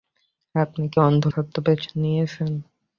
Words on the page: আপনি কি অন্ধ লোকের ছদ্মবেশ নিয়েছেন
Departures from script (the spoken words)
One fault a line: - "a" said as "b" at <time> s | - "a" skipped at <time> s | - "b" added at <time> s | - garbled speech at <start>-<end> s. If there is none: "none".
- "লোকের" skipped at 1.2 s